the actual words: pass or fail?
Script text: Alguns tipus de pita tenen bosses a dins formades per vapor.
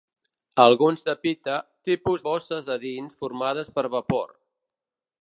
fail